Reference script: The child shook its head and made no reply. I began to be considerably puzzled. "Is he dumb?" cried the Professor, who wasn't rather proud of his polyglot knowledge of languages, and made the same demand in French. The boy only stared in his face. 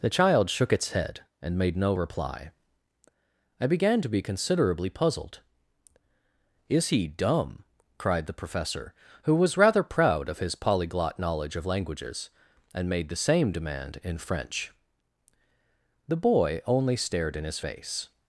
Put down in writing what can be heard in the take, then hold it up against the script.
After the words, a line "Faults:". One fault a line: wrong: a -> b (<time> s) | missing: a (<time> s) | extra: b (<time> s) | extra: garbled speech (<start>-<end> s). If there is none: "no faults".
The child shook its head and made no reply. I began to be considerably puzzled. "Is he dumb?" cried the Professor, who was rather proud of his polyglot knowledge of languages, and made the same demand in French. The boy only stared in his face.
Faults:
wrong: wasn't -> was (9.3 s)